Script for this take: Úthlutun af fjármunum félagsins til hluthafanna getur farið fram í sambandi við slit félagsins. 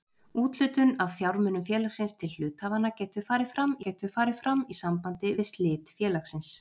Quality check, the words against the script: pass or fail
fail